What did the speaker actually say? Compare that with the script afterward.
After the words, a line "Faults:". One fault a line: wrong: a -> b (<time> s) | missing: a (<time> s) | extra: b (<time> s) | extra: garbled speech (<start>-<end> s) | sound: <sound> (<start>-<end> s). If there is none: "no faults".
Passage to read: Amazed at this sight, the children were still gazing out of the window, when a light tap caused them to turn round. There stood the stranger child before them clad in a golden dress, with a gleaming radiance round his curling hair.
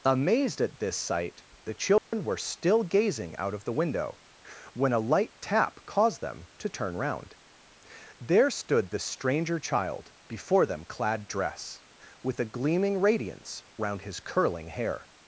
Amazed at this sight, the children were still gazing out of the window, when a light tap caused them to turn round. There stood the stranger child before them clad dress, with a gleaming radiance round his curling hair.
Faults:
sound: dropout (2.0-2.1 s)
missing: in a golden (11.3 s)